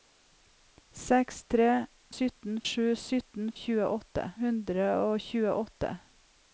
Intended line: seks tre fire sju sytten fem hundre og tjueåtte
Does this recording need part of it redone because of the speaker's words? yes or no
yes